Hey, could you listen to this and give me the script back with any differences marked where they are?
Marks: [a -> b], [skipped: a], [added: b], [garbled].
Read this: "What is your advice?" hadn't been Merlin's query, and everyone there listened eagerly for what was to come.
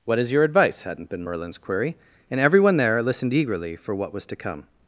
"What is your advice?" hadn't been Merlin's query, and everyone there listened eagerly for what was to come.